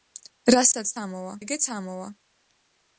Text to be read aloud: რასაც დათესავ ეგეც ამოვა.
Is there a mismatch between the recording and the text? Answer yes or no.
yes